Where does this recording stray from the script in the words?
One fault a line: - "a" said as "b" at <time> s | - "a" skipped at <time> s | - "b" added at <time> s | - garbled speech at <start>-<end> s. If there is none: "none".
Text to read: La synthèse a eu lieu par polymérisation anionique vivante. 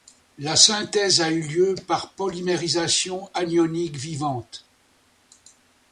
none